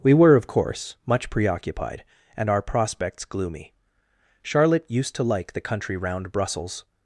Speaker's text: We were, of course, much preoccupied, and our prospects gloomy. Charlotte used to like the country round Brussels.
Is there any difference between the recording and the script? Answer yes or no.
no